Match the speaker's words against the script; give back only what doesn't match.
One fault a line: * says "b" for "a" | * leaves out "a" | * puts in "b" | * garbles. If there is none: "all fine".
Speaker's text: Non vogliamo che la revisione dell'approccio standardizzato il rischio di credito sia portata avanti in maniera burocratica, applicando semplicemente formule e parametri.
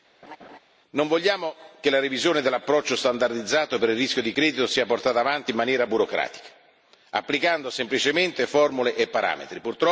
* puts in "per"